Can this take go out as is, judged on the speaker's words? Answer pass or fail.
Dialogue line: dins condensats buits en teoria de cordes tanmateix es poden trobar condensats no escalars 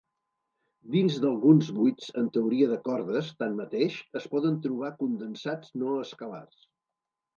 fail